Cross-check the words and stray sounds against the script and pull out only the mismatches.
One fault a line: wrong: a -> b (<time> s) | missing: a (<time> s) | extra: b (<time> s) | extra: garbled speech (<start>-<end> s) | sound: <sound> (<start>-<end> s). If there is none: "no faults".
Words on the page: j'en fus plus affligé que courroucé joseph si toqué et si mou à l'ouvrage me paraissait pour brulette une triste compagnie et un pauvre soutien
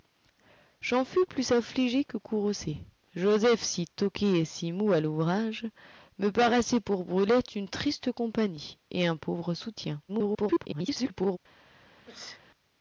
extra: garbled speech (10.1-11.4 s)
sound: sneeze (12.1-12.4 s)